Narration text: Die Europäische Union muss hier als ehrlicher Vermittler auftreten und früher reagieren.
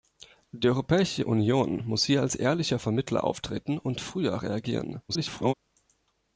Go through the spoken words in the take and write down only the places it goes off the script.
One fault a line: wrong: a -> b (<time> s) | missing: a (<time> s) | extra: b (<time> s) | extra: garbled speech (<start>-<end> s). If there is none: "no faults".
extra: garbled speech (5.1-5.5 s)